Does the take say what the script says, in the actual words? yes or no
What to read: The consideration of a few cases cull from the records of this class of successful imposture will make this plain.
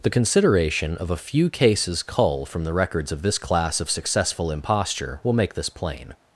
yes